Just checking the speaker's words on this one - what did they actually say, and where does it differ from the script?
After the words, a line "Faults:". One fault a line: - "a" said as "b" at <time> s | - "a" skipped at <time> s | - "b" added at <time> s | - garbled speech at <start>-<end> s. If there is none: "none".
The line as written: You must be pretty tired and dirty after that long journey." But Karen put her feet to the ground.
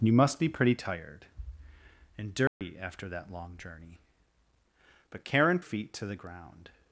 You must be pretty tired and dirty after that long journey." But Karen feet to the ground.
Faults:
- "put her" skipped at 5.6 s